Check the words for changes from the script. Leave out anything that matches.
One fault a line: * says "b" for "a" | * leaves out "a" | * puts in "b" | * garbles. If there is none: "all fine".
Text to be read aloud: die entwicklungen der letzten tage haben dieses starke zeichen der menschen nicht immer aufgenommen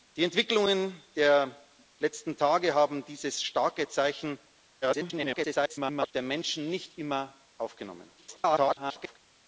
* garbles
* garbles